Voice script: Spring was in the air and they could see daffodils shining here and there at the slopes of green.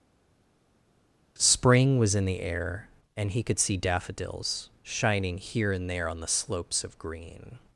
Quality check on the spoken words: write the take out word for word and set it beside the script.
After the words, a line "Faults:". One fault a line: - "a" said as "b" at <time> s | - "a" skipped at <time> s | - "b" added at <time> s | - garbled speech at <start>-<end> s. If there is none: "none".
Spring was in the air and he could see daffodils shining here and there on the slopes of green.
Faults:
- "they" said as "he" at 3.3 s
- "at" said as "on" at 6.1 s